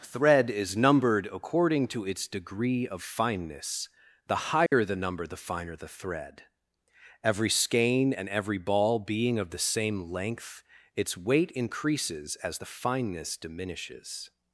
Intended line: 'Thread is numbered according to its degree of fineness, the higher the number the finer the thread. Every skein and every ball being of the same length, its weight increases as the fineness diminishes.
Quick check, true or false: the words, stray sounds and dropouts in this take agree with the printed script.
false